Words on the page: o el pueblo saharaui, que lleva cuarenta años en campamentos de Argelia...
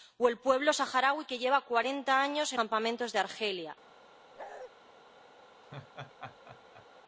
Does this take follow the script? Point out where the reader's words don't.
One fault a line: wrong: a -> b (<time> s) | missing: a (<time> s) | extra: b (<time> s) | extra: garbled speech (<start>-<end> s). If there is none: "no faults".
no faults